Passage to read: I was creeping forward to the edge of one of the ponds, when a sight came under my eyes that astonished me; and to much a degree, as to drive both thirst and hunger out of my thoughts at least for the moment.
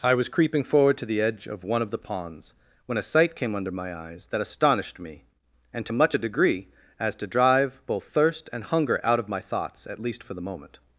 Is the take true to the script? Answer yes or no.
yes